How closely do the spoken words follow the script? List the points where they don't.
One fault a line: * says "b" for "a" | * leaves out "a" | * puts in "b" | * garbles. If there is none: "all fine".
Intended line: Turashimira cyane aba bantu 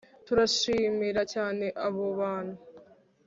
* says "abo" for "aba"